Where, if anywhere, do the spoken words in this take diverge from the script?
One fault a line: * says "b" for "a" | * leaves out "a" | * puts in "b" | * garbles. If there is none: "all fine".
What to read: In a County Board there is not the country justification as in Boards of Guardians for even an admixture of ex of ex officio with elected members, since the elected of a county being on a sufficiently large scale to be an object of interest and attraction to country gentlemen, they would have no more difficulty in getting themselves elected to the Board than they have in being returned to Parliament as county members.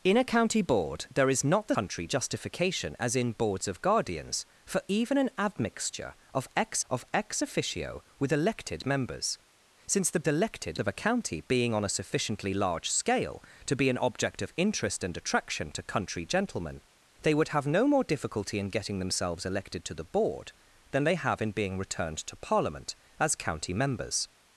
all fine